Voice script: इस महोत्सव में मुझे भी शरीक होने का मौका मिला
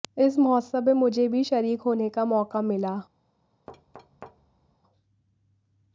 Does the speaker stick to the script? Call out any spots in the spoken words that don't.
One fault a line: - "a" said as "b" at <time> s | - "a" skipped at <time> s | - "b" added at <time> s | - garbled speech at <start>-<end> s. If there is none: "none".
none